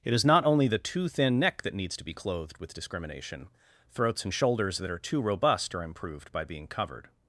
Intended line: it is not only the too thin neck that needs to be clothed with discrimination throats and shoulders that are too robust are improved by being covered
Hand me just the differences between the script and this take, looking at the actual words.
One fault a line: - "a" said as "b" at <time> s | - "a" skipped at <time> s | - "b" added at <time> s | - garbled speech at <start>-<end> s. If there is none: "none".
none